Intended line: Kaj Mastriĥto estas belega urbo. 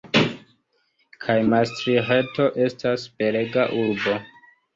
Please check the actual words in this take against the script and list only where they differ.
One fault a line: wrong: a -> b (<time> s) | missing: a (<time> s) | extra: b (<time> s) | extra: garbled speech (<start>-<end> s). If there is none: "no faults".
no faults